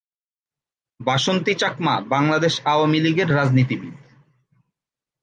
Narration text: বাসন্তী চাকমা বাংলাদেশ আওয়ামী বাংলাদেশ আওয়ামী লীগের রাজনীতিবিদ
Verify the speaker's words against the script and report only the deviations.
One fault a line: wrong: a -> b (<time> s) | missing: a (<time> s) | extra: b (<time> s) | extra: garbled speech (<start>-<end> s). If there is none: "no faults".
missing: বাংলাদেশ আওয়ামী (3.0 s)